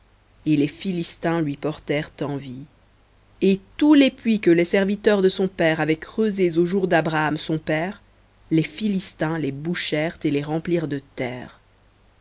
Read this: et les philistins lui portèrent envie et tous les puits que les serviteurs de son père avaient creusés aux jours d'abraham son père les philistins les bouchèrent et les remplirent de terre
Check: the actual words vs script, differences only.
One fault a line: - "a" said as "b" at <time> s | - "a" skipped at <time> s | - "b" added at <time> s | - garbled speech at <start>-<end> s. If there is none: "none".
none